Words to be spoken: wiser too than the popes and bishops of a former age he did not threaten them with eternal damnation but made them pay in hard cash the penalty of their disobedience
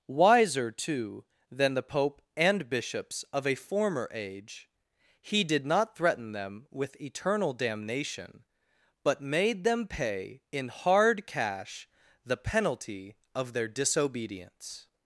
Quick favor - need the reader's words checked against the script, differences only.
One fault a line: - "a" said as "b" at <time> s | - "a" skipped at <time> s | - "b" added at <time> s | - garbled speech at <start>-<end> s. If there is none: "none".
- "popes" said as "pope" at 1.8 s